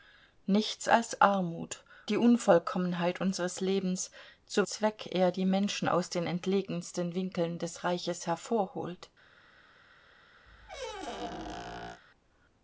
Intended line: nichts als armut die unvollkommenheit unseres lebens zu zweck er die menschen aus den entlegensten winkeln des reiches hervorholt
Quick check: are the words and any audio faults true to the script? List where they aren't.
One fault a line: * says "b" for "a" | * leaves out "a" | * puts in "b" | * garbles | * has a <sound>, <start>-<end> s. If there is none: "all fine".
* has a squeak, 10.5-12.0 s